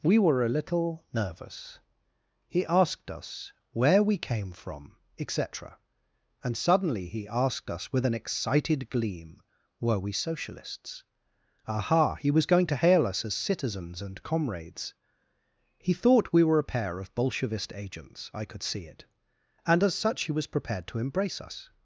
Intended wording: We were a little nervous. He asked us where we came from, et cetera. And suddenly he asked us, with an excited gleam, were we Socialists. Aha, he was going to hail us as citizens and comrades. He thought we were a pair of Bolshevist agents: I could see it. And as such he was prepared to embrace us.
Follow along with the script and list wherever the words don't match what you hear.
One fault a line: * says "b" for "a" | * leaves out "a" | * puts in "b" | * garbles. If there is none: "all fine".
all fine